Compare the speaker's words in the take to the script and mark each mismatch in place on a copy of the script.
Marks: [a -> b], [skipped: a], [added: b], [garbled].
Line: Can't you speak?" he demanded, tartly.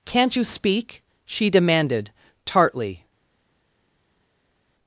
Can't you speak?" [he -> she] demanded, tartly.